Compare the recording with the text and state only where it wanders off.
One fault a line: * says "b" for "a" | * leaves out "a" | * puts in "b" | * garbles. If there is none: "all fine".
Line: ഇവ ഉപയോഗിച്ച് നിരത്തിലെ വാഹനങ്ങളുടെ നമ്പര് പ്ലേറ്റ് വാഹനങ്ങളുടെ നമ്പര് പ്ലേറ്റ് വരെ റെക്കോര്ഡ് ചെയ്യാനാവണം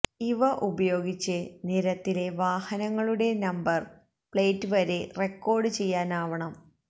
* leaves out "വാഹനങ്ങളുടെ നമ്പര് പ്ലേറ്റ്"